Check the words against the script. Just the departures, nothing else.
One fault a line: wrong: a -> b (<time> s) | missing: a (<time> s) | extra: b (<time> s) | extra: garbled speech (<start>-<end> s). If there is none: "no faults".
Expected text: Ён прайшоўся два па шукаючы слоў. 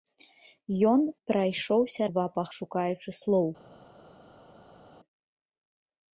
no faults